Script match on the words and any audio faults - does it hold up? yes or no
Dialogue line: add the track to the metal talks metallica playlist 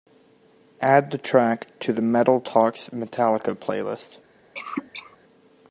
no